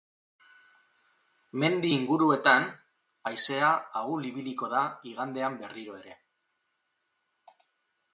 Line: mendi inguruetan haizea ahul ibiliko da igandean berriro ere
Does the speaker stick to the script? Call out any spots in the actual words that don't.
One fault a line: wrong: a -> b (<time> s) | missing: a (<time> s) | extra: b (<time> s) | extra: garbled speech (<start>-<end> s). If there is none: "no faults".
no faults